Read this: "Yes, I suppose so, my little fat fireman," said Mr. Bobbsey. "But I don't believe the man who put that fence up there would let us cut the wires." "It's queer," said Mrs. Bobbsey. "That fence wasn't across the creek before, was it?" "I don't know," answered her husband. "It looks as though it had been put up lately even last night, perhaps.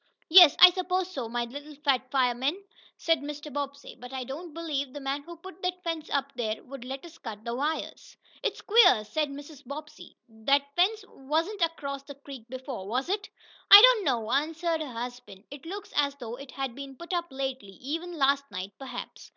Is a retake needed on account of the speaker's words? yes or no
no